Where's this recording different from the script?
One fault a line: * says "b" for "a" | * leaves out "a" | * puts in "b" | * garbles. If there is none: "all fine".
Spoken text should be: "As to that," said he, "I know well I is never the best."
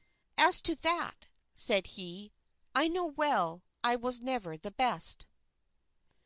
* says "was" for "is"